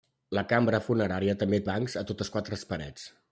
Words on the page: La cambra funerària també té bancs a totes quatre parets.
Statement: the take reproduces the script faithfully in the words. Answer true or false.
false